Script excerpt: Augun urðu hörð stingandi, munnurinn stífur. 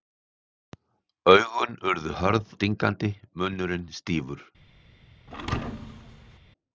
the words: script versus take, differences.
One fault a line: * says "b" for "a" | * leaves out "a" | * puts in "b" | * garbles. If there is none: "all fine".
all fine